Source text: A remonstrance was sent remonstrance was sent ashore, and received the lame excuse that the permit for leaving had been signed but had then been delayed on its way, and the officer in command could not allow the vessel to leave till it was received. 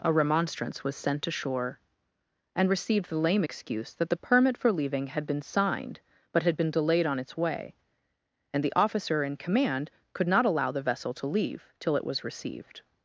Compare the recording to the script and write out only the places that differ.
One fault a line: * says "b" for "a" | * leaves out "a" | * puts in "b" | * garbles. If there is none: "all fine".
* leaves out "remonstrance was sent"
* leaves out "then"